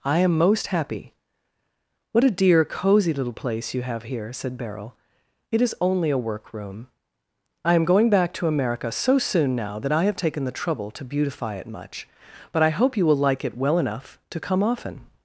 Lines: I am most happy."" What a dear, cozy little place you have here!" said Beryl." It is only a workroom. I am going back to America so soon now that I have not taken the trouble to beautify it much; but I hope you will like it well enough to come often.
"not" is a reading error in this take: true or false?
true